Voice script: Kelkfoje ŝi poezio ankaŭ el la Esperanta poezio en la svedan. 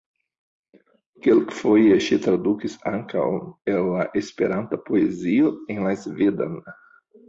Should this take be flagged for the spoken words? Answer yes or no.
yes